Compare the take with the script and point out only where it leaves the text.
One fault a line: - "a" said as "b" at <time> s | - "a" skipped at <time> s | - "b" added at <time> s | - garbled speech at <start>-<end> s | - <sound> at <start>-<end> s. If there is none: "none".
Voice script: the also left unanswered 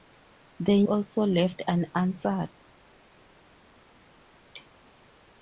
none